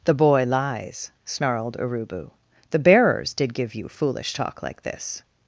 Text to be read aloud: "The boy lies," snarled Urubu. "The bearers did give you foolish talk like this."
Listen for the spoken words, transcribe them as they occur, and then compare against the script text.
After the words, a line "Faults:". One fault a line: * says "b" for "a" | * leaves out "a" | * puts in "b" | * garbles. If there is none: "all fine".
"The boy lies," snarled Urubu. "The bearers did give you foolish talk like this."
Faults:
all fine